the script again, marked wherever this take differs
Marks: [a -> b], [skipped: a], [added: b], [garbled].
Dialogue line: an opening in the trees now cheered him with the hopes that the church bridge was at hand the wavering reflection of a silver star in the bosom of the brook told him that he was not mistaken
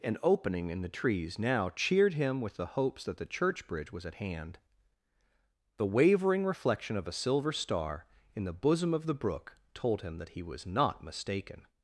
an opening in the trees now cheered him with the hopes that the church bridge was at hand the wavering reflection of a silver star in the bosom of the brook told him that he was not mistaken